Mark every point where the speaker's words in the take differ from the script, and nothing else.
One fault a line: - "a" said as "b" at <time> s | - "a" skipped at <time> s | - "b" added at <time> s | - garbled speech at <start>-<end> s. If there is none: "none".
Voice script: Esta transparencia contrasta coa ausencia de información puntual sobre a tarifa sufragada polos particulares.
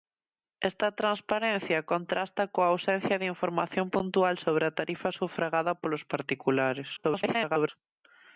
- garbled speech at 7.0-7.7 s